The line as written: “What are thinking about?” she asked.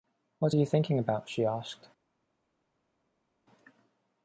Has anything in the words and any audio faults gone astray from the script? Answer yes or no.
yes